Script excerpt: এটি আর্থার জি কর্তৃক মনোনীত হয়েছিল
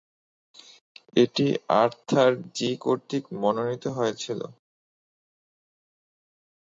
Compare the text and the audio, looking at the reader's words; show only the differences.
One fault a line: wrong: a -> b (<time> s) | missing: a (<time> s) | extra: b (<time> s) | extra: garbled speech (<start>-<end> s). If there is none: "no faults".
no faults